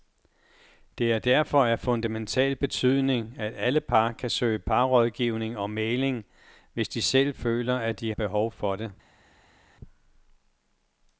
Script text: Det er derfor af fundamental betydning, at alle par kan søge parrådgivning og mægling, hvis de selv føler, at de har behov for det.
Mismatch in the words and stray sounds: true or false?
true